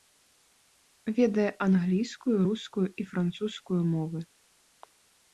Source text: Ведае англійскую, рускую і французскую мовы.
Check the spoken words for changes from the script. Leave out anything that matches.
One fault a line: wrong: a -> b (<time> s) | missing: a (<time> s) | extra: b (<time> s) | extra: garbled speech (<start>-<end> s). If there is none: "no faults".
no faults